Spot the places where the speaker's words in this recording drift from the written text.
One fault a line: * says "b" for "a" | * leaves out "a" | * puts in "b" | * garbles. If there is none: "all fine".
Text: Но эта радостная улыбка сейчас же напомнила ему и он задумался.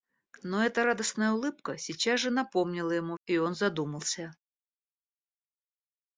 all fine